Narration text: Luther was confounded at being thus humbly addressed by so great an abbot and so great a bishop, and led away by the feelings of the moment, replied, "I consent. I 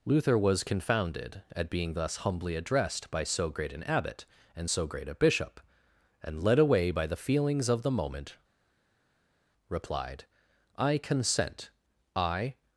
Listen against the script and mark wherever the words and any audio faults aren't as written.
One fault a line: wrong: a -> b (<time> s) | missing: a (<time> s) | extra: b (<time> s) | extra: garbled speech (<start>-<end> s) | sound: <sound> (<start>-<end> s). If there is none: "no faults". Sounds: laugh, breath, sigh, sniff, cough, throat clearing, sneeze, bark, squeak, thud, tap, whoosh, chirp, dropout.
no faults